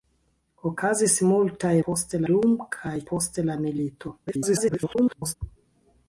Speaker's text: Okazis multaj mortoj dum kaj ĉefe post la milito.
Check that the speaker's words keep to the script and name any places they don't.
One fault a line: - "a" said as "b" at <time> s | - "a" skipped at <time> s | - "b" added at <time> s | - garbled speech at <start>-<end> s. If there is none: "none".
- "mortoj" said as "post" at 1.9 s
- "ĉefe" skipped at 2.9 s
- garbled speech at 4.3-5.4 s